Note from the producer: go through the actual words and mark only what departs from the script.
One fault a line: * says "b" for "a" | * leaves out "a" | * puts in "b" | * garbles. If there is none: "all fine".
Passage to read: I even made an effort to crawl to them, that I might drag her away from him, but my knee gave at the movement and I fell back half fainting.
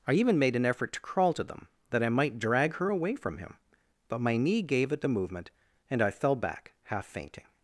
all fine